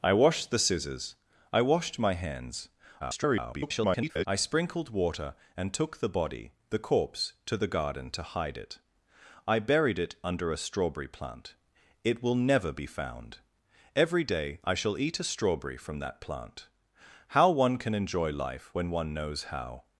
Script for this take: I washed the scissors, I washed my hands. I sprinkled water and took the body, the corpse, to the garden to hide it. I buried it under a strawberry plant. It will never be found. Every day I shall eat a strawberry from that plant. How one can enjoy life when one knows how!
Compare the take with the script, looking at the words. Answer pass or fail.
fail